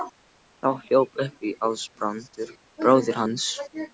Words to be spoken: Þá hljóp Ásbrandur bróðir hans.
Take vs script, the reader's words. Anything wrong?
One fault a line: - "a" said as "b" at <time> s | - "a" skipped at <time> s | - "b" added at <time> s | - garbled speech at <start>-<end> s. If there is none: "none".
- "upp" added at 1.2 s